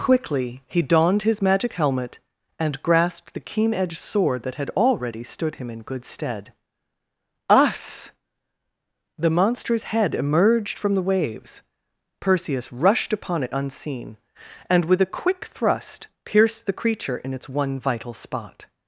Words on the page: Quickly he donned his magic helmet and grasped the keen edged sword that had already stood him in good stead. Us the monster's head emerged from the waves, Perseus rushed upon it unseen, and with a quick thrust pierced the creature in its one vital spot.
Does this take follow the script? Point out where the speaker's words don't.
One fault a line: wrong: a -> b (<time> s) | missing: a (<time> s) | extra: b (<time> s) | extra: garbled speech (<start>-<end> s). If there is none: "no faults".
no faults